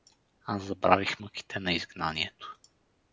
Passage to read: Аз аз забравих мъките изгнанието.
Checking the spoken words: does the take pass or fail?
fail